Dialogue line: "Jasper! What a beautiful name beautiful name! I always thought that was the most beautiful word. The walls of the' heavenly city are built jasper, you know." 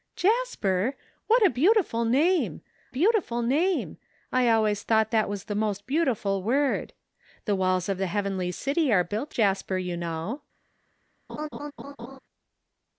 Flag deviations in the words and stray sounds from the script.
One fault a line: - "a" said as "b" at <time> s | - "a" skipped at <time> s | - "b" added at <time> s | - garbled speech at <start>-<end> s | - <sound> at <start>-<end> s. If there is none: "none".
- laugh at 11.3-12.2 s